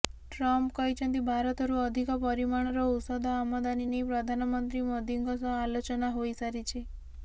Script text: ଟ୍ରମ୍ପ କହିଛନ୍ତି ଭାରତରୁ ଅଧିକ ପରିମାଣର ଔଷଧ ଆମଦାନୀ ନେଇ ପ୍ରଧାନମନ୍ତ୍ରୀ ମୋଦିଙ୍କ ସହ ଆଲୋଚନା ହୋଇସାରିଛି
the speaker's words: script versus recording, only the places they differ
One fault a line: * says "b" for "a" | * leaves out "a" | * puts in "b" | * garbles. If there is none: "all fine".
all fine